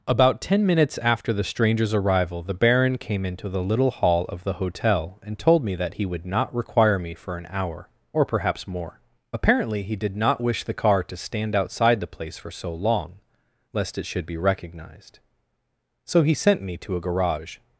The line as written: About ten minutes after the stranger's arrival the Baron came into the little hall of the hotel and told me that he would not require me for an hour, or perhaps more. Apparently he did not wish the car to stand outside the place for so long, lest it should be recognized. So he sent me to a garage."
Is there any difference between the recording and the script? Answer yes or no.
no